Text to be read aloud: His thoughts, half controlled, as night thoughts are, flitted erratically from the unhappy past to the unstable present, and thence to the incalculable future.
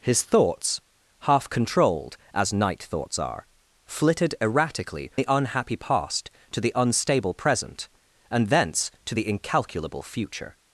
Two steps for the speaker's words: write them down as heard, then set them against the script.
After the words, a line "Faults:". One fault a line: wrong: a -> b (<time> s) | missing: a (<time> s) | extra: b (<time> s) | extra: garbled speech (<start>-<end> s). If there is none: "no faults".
His thoughts, half controlled, as night thoughts are, flitted erratically the unhappy past to the unstable present, and thence to the incalculable future.
Faults:
missing: from (5.1 s)